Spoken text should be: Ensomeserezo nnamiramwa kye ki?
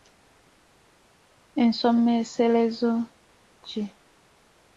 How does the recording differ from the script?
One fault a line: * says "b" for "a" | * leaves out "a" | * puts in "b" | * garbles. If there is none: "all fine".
* leaves out "nnamiramwa kye"